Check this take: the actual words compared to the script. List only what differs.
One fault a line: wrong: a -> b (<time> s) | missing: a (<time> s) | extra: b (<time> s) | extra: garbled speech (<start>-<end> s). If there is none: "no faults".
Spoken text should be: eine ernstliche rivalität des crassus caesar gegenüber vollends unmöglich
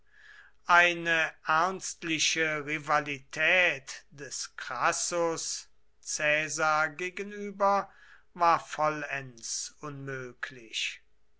extra: war (8.3 s)